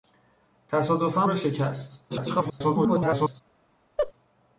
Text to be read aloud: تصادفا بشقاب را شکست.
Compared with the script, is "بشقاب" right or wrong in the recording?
wrong